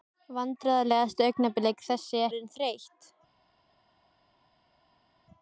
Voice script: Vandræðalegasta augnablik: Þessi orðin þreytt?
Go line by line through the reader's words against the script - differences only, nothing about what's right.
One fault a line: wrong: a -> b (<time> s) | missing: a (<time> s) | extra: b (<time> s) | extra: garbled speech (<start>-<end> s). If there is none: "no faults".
no faults